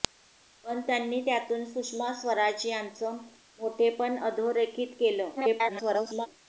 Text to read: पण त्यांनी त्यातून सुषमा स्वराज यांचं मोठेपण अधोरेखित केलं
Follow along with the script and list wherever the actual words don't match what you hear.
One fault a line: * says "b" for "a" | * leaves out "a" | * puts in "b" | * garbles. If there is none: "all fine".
* garbles